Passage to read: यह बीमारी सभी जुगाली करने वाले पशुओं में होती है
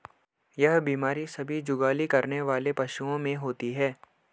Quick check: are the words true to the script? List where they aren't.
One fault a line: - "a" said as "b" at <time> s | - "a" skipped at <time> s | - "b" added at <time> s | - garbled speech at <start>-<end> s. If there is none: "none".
none